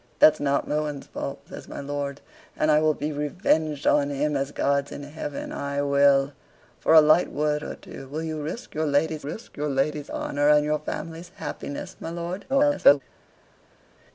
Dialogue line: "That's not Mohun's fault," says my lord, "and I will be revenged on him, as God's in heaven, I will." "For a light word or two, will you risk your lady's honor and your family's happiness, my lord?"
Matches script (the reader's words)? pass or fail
fail